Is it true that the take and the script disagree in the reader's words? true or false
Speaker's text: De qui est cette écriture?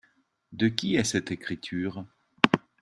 false